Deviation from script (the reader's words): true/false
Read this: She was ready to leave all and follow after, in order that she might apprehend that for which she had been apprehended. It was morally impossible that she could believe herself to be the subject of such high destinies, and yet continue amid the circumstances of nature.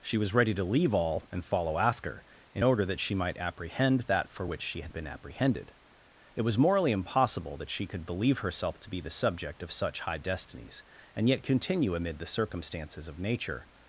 false